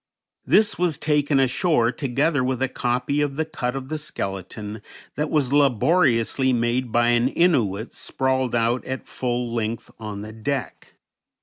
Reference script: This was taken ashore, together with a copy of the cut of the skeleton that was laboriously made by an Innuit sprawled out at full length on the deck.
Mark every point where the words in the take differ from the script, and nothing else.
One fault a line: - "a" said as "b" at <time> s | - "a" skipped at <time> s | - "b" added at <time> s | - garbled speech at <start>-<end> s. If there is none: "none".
none